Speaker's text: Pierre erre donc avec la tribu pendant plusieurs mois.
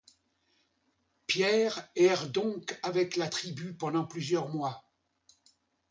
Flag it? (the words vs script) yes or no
no